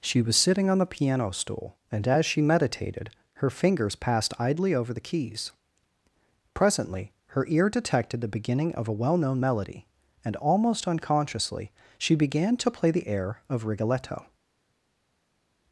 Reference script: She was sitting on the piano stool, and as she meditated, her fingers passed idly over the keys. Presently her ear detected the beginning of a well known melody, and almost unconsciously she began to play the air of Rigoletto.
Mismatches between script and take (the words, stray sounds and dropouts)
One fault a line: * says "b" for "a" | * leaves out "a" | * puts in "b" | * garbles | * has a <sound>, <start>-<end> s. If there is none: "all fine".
all fine